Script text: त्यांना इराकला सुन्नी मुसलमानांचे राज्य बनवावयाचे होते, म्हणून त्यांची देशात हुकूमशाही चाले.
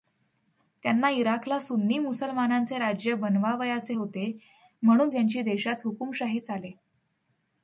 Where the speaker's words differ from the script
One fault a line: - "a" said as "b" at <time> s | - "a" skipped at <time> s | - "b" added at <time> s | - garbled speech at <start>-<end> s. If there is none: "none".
none